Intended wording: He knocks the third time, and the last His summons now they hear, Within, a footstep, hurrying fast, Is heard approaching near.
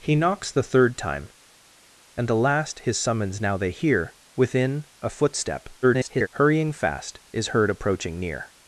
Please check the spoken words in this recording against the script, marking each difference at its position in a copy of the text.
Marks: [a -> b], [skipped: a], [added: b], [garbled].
He knocks the third time, and the last His summons now they hear, Within, a footstep, [garbled] hurrying fast, Is heard approaching near.